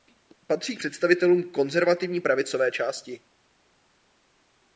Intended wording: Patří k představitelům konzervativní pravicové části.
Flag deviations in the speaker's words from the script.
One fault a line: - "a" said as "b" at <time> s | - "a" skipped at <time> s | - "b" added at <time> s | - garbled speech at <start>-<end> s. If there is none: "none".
none